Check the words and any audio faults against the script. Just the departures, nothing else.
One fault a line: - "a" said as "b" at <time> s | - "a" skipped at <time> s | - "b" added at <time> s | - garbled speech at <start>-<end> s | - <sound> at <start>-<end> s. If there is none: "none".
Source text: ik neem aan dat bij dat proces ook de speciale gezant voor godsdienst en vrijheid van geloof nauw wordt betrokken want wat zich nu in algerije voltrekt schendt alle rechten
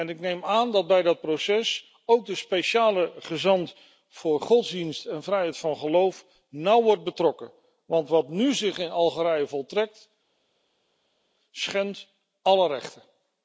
none